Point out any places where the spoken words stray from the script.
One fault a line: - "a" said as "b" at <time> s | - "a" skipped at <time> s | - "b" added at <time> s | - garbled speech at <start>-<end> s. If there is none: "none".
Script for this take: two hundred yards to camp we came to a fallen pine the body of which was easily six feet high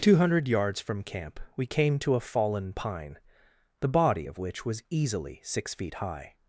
- "to" said as "from" at 0.8 s